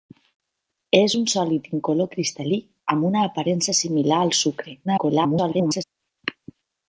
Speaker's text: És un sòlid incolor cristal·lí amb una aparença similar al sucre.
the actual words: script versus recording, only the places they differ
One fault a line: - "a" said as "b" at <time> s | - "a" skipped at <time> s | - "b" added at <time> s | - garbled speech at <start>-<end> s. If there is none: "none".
- garbled speech at 4.8-5.8 s